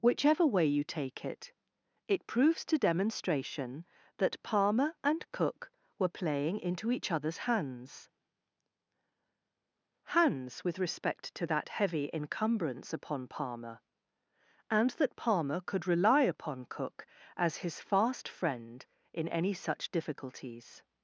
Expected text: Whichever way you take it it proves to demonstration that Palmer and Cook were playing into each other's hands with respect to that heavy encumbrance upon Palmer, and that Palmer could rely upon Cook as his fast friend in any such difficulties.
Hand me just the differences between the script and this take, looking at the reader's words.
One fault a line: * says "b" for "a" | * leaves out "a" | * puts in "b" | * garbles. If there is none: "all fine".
* puts in "hands"